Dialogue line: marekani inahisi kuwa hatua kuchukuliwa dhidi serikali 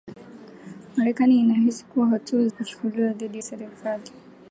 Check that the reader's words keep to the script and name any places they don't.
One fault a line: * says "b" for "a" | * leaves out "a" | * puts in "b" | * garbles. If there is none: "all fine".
all fine